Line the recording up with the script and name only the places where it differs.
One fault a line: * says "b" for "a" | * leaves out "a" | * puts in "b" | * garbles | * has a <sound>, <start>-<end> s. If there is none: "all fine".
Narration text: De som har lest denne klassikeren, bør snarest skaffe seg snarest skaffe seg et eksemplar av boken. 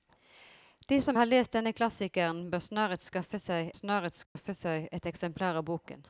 * has a dropout, 4.2-4.4 s